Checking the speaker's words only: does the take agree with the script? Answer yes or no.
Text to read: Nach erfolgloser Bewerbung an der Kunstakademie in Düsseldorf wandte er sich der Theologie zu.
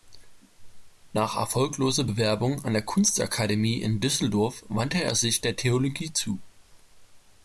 yes